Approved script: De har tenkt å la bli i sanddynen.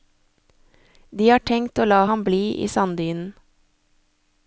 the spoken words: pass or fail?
fail